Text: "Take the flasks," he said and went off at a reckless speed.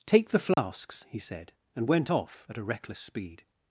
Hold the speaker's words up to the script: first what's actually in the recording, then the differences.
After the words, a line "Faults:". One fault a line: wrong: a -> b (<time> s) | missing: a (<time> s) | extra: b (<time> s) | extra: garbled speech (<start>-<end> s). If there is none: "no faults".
"Take the flasks," he said and went off at a reckless speed.
Faults:
no faults